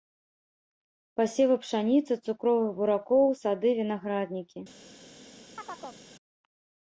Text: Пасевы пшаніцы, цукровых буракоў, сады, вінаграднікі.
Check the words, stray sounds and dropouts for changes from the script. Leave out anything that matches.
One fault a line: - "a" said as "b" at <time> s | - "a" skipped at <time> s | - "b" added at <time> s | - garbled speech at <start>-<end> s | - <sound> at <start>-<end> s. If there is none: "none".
- chirp at 5.6-6.0 s